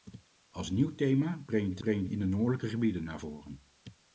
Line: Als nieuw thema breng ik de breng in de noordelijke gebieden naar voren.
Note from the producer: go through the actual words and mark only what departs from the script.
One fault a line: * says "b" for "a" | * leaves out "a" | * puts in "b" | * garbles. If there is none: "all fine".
all fine